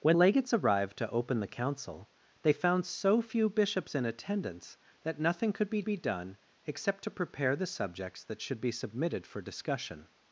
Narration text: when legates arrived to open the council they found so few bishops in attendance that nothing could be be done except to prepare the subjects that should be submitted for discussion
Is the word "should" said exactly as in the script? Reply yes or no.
yes